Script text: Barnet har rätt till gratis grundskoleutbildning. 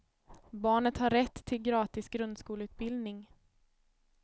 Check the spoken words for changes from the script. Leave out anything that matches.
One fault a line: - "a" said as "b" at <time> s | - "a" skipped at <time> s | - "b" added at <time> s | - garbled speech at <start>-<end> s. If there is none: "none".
none